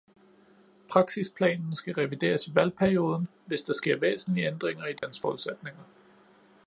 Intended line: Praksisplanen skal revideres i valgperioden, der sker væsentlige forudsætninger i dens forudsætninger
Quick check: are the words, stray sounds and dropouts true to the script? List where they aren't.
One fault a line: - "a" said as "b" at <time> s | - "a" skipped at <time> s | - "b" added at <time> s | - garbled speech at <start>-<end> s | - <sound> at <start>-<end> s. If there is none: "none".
- "hvis" added at 3.5 s
- "forudsætninger" said as "ændringer" at 4.5 s
- dropout at 5.0-5.0 s